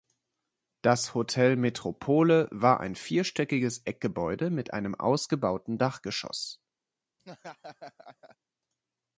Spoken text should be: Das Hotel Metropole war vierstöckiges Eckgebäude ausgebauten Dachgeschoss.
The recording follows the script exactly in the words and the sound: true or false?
false